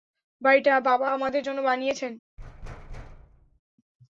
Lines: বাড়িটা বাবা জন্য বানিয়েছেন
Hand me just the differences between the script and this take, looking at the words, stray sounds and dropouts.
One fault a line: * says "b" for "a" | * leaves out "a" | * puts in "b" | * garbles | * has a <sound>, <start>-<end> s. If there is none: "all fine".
* puts in "আমাদের"
* has a thud, 2.4-3.6 s